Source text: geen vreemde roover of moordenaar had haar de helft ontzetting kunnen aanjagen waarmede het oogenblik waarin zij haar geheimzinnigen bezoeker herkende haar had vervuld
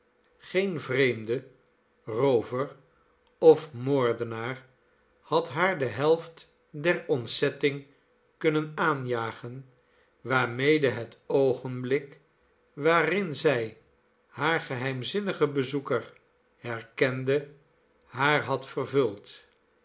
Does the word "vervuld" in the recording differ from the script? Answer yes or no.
no